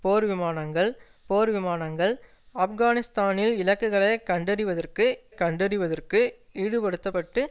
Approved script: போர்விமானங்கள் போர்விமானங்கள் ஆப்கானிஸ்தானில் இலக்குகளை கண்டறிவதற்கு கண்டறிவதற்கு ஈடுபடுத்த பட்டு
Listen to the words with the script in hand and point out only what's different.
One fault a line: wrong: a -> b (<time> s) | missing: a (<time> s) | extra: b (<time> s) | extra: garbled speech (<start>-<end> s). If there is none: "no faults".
no faults